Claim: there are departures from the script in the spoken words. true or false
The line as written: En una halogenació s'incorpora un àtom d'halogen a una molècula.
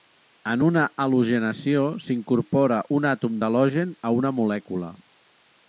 false